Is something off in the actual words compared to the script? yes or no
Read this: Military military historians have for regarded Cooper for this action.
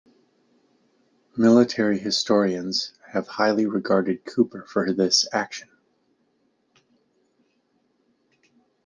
yes